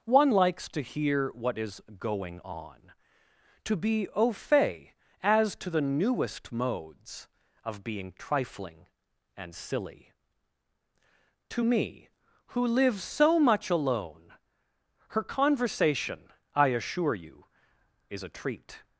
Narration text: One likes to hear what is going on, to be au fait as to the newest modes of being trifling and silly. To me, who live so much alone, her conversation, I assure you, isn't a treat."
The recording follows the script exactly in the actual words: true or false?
false